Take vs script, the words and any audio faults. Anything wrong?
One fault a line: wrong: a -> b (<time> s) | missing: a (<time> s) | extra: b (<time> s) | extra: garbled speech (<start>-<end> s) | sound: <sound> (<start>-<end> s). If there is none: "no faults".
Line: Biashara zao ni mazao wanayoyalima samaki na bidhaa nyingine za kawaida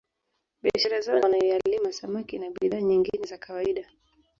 missing: ni mazao (1.2 s)